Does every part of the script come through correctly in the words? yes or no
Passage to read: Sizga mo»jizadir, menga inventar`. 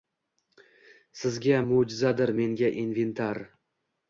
yes